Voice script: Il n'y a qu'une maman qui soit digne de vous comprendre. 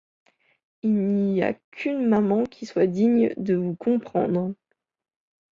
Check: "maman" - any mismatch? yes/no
no